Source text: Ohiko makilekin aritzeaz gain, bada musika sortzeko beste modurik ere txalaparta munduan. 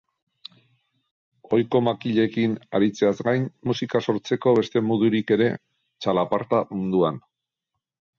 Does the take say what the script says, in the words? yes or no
no